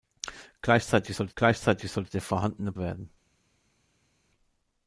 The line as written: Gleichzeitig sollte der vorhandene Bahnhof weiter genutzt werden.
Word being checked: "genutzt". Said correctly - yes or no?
no